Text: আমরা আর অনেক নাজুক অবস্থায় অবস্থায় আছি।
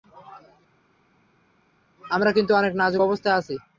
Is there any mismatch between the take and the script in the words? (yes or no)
yes